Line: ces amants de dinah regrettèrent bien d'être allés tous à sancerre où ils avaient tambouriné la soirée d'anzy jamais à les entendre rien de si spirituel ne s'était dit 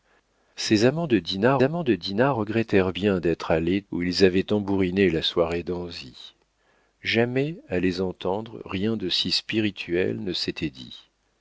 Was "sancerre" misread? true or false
true